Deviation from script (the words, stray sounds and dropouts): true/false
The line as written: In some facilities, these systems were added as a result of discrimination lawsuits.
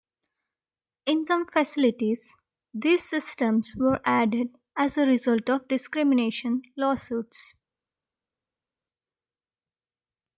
false